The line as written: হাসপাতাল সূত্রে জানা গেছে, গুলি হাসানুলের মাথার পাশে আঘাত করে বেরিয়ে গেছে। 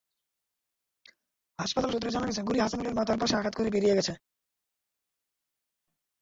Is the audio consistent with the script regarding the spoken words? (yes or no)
yes